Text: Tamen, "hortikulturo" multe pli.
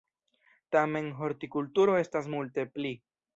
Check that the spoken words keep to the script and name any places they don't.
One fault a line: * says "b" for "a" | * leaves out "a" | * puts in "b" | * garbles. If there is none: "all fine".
* puts in "estas"